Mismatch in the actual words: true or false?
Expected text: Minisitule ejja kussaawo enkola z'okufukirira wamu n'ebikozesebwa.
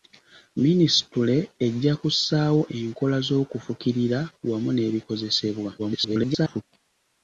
true